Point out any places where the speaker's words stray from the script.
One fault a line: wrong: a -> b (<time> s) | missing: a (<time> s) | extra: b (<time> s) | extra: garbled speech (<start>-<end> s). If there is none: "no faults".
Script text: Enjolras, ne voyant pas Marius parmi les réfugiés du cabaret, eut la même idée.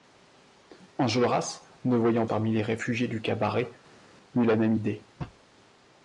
missing: pas Marius (2.2 s)